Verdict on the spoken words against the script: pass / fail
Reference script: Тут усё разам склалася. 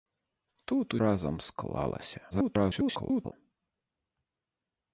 fail